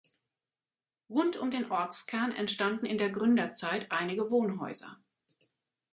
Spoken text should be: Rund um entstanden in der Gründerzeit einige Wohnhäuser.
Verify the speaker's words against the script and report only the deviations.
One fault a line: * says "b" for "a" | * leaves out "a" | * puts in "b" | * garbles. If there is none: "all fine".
* puts in "den Ortskern"